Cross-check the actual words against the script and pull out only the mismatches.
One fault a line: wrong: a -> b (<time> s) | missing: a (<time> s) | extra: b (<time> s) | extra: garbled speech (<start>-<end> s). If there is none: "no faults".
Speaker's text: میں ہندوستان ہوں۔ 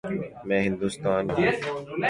no faults